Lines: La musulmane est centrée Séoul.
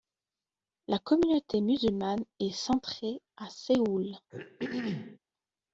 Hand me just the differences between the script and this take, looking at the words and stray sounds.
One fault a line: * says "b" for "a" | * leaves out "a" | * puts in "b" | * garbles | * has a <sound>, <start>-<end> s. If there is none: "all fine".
* puts in "communauté"
* puts in "à"
* has a throat clearing, 4.3-5.2 s